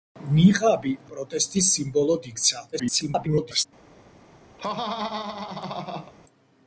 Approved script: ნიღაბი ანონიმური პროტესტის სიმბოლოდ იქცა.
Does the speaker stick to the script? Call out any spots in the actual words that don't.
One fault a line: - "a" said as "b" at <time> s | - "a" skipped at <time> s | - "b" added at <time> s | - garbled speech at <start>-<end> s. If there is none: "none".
- "ანონიმური" skipped at 0.9 s
- garbled speech at 2.7-3.7 s